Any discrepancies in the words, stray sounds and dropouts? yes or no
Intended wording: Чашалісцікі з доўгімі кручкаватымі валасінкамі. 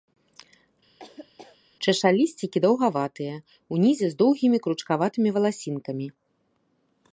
yes